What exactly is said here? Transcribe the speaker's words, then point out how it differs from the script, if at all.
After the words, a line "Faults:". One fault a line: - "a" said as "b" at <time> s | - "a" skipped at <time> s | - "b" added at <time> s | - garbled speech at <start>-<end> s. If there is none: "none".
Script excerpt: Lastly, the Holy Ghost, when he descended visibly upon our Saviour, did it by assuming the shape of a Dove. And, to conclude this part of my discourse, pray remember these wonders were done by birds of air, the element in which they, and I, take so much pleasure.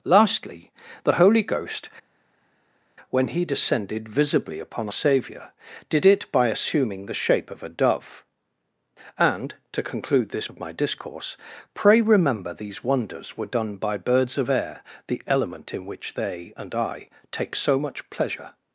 Lastly, the Holy Ghost, when he descended visibly upon Saviour, did it by assuming the shape of a Dove. And, to conclude this of my discourse, pray remember these wonders were done by birds of air, the element in which they, and I, take so much pleasure.
Faults:
- "our" skipped at 4.9 s
- "part" skipped at 10.5 s